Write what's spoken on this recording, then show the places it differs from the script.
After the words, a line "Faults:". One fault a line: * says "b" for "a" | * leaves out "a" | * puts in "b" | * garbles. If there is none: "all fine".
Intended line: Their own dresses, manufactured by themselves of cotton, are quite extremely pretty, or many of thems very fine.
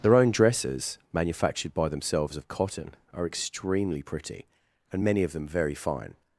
Their own dresses, manufactured by themselves of cotton, are extremely pretty, and many of them very fine.
Faults:
* leaves out "quite"
* says "and" for "or"
* says "them" for "thems"